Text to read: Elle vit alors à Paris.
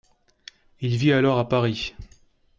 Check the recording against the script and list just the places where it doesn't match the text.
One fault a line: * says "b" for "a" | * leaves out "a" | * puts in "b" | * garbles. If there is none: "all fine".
* says "Il" for "Elle"